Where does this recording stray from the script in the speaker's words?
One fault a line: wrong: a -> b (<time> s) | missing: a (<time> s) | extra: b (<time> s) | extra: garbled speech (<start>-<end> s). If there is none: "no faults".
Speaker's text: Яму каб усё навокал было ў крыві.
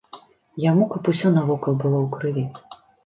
no faults